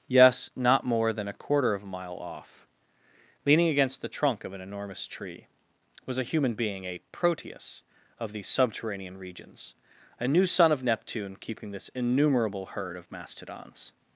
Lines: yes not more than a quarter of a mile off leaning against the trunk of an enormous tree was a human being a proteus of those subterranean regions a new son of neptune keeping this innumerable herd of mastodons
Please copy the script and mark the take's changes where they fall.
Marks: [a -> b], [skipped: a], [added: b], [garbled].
yes not more than a quarter of a mile off leaning against the trunk of an enormous tree was a human being a proteus of [those -> these] subterranean regions a new son of neptune keeping this innumerable herd of mastodons